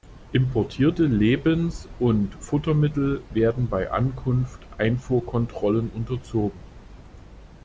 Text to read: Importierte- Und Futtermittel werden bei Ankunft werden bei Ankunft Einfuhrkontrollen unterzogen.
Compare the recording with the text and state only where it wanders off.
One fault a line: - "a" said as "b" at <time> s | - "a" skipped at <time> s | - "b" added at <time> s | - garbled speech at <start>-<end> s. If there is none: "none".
- "Lebens" added at 1.1 s
- "werden bei Ankunft" skipped at 4.6 s